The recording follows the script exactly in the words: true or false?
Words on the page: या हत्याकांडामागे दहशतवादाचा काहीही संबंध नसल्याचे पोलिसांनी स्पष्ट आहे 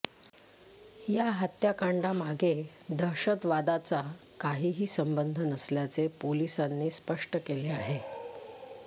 false